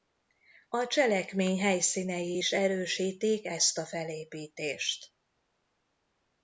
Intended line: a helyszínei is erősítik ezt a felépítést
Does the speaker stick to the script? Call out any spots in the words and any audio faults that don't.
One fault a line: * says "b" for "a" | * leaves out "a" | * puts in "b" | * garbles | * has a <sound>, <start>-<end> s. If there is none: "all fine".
* puts in "cselekmény"